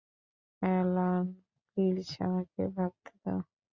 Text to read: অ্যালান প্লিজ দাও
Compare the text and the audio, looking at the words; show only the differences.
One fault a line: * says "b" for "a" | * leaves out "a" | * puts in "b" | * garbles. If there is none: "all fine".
* puts in "আমাকে ভাবতে"